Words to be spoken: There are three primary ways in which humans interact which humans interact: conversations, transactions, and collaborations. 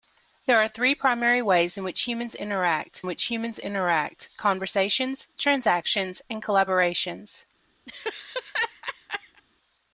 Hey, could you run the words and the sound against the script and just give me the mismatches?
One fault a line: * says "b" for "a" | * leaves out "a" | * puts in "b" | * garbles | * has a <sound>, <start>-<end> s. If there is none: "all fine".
* has a laugh, 7.9-9.4 s